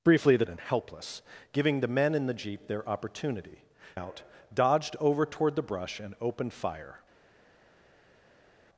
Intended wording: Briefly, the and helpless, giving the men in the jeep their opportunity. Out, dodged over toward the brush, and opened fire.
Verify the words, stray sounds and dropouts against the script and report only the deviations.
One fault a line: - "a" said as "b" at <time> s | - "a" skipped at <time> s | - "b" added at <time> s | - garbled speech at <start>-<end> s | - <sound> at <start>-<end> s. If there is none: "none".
none